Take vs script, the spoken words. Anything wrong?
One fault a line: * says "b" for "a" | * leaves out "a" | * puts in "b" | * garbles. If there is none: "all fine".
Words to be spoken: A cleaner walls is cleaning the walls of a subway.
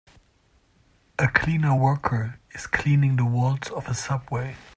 * says "worker" for "walls"